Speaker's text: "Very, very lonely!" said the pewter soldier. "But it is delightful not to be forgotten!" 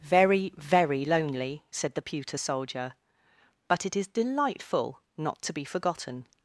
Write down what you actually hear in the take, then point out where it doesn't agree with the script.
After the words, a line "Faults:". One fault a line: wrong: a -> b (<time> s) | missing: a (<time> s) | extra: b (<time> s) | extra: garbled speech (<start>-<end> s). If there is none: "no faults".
"Very, very lonely!" said the pewter soldier. "But it is delightful not to be forgotten!"
Faults:
no faults